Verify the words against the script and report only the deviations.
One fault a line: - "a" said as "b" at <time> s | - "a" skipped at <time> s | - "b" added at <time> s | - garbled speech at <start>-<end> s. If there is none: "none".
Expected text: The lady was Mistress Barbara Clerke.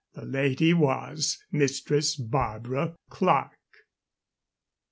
none